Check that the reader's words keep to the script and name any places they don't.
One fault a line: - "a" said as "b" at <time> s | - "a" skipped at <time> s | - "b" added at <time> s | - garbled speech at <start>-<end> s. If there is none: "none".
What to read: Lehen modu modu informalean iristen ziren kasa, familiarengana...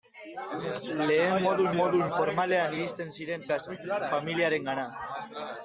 none